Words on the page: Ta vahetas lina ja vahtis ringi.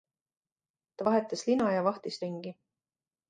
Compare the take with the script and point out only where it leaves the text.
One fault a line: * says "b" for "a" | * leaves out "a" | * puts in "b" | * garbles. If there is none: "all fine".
all fine